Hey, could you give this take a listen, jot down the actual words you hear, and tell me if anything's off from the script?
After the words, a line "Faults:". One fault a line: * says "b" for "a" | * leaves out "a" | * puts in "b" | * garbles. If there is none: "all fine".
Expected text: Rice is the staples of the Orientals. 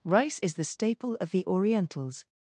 Rice is the staple of the Orientals.
Faults:
* says "staple" for "staples"